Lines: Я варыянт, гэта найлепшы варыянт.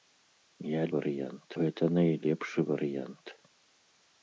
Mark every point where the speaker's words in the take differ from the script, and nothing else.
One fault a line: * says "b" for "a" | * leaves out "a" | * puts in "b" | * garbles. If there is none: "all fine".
all fine